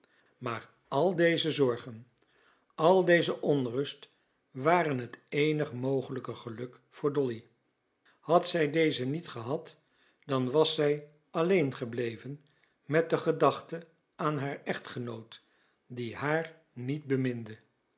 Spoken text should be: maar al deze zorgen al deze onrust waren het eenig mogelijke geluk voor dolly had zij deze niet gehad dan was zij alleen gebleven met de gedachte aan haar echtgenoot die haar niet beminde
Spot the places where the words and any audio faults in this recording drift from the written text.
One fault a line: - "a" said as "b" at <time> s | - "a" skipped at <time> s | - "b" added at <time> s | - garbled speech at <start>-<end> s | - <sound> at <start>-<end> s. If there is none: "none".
none